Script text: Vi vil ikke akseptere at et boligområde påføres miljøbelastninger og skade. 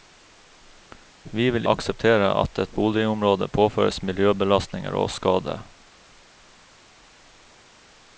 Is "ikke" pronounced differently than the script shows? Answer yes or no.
yes